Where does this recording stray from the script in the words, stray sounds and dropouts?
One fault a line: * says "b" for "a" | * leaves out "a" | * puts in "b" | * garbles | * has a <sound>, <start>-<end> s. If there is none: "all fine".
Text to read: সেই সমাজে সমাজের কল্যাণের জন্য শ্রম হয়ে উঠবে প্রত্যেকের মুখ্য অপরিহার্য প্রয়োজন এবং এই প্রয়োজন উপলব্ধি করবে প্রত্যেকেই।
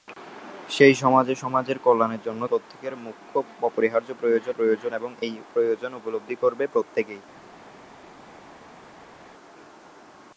* leaves out "শ্রম হয়ে উঠবে"
* puts in "প্রয়োজন"